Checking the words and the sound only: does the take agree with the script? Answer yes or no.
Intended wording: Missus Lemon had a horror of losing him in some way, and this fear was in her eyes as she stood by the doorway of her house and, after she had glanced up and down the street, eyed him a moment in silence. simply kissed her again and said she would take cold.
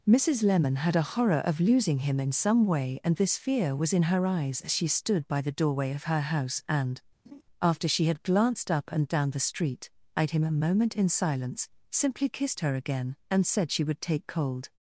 no